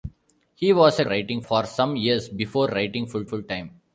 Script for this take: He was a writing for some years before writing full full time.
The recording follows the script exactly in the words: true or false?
true